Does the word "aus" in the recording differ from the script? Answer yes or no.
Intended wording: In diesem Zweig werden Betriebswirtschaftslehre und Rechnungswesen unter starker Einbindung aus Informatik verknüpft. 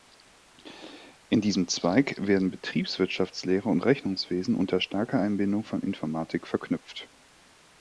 yes